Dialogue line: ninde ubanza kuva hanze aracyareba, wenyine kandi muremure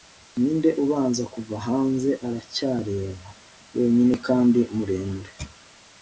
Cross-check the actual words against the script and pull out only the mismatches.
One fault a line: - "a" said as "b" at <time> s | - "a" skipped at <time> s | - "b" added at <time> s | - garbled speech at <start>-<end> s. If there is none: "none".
none